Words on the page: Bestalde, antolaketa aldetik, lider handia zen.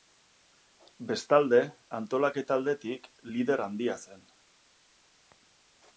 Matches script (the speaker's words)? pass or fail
pass